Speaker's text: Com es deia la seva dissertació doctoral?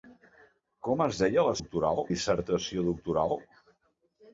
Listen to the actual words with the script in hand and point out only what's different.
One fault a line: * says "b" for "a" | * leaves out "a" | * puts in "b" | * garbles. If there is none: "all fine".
* says "doctoral" for "seva"